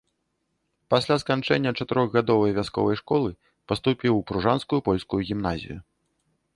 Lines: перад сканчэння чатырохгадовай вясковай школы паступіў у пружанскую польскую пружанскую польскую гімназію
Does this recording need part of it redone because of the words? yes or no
yes